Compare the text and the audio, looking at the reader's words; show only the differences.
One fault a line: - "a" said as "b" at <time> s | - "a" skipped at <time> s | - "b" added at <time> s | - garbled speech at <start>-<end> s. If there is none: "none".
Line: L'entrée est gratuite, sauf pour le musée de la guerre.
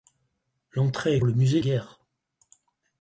- "gratuite sauf pour" skipped at 1.2 s
- "de la" skipped at 1.6 s